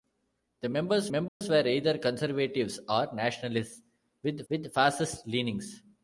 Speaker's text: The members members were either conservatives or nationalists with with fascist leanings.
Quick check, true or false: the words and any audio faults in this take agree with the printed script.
false